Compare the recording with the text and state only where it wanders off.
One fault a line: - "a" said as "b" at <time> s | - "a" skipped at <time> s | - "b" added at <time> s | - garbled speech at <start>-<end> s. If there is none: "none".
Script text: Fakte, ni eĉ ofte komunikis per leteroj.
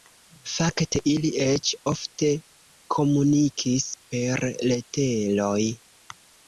- "ni" said as "ili" at 1.1 s